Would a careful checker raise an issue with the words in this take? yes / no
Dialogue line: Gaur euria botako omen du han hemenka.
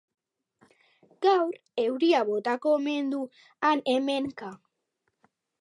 no